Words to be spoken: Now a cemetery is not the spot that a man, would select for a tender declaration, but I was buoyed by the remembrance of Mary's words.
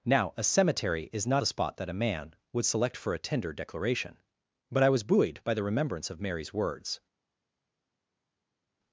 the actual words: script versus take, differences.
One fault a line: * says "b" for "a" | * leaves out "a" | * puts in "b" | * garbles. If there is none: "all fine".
all fine